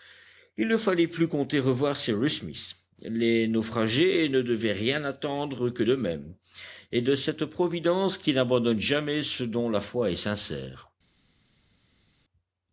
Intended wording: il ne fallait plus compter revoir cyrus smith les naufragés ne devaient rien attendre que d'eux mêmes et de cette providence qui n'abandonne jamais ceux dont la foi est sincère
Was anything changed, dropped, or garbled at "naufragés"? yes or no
no